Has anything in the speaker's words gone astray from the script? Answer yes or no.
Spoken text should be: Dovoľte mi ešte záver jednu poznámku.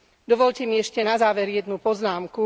yes